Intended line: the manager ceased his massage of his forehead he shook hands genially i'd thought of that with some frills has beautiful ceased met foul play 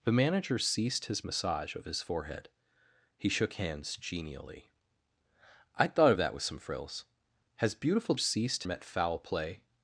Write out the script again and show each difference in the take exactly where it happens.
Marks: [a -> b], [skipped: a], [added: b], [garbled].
the manager ceased his massage of his forehead he shook hands genially i'd thought of that with some frills has beautiful ceased met foul play